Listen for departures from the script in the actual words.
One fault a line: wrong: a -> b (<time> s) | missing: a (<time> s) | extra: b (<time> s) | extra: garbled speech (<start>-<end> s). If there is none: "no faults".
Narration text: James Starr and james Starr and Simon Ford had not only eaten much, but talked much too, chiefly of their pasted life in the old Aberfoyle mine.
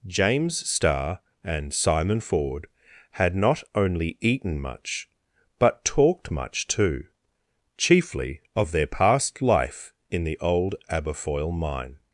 missing: james Starr and (1.7 s)
wrong: pasted -> past (8.9 s)